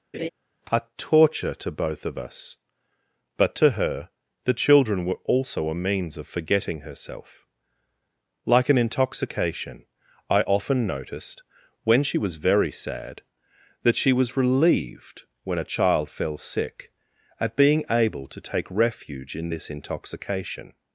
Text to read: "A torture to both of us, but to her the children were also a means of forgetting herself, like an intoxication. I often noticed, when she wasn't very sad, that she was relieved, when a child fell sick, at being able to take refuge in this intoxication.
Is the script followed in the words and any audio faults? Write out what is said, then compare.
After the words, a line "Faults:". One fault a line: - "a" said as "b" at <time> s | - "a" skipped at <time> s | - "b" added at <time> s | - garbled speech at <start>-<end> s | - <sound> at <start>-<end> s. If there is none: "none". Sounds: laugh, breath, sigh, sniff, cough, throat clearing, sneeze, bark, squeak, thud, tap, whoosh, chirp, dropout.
"A torture to both of us, but to her the children were also a means of forgetting herself, like an intoxication. I often noticed, when she was very sad, that she was relieved, when a child fell sick, at being able to take refuge in this intoxication.
Faults:
- laugh at 0.1-0.3 s
- "wasn't" said as "was" at 12.2 s